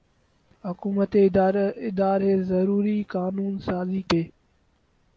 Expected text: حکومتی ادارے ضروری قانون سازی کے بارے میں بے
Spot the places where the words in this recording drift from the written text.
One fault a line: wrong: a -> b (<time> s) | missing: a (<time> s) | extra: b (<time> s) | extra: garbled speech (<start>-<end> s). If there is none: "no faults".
missing: کے بارے میں (4.0 s)